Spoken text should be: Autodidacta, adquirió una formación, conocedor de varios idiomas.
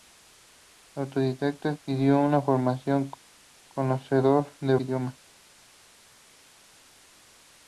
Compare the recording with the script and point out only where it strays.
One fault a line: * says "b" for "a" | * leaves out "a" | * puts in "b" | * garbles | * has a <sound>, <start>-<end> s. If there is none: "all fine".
* leaves out "varios"